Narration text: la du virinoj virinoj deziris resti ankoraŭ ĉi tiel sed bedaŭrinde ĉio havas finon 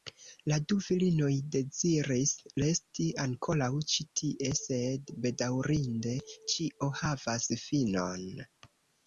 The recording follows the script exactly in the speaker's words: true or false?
false